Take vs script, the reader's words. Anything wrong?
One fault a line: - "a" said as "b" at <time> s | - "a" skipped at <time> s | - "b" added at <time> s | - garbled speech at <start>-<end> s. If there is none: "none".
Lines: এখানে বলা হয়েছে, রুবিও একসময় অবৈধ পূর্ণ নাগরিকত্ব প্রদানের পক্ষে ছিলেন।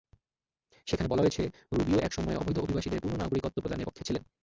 - "এখানে" said as "সেখানে" at 0.9 s
- "অভিবাসীদের" added at 2.6 s